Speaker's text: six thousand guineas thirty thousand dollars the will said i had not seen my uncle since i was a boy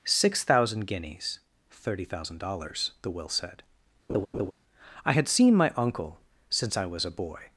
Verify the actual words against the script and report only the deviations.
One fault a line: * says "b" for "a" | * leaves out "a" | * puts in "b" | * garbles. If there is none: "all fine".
* leaves out "not"